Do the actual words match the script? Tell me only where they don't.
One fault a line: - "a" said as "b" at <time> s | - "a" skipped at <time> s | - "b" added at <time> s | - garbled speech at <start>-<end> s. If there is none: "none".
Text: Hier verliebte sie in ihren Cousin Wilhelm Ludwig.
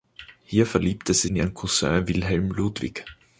none